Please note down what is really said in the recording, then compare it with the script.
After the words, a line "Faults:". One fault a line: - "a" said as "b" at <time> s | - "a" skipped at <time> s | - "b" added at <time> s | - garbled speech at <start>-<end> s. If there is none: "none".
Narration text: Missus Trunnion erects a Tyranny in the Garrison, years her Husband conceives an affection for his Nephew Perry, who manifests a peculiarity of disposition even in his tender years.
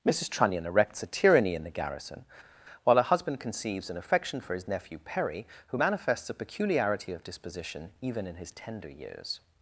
Missus Trunnion erects a Tyranny in the Garrison, while her Husband conceives an affection for his Nephew Perry, who manifests a peculiarity of disposition even in his tender years.
Faults:
- "years" said as "while" at 2.8 s